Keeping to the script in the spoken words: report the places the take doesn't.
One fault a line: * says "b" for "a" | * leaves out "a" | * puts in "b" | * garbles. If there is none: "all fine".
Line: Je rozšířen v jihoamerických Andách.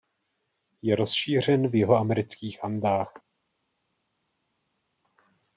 all fine